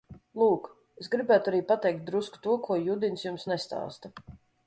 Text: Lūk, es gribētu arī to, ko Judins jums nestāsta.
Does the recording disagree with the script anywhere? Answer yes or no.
yes